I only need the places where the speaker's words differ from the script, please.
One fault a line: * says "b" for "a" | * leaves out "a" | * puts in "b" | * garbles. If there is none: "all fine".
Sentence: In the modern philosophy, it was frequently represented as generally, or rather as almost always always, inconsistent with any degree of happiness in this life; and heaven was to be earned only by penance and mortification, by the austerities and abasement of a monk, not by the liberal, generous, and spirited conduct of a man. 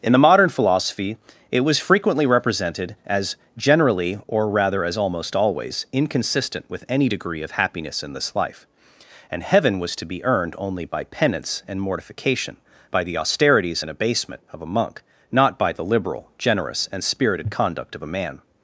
* leaves out "always"